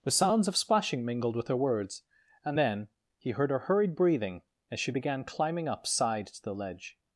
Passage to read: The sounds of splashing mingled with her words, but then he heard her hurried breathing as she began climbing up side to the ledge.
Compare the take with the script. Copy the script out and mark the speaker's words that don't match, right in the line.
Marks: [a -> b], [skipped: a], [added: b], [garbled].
The sounds of splashing mingled with her words, [but -> and] then he heard her hurried breathing as she began climbing up side to the ledge.